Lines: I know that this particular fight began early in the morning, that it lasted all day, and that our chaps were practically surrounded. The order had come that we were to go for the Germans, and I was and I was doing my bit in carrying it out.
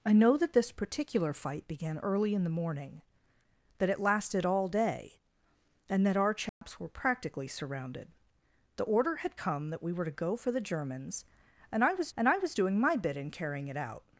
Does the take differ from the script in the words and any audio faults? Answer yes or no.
yes